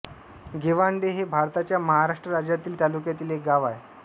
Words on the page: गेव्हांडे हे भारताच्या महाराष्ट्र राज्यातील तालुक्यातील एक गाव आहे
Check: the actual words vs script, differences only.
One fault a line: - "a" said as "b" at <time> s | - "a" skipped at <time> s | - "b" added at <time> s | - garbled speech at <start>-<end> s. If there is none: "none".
none